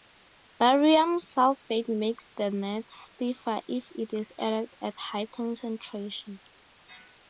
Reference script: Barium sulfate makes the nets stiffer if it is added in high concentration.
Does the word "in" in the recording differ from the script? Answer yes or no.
yes